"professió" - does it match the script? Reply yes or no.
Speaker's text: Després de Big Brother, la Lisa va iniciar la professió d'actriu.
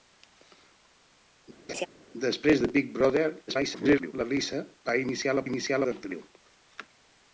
no